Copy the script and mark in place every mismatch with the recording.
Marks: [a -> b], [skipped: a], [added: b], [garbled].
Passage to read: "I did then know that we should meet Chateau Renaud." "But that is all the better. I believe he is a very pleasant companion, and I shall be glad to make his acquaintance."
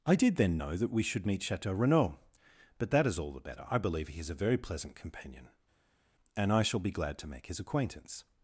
"I did then know that we should meet Chateau Renaud." "But that is all the better. I believe he is a very pleasant companion, and I shall be glad to make his acquaintance."